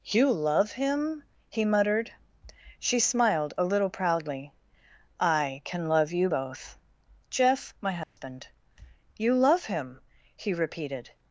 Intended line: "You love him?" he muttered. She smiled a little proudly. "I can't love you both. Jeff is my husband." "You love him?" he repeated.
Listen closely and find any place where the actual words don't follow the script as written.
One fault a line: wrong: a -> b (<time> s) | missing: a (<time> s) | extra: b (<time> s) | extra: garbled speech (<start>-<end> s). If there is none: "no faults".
wrong: can't -> can (5.6 s)
missing: is (7.7 s)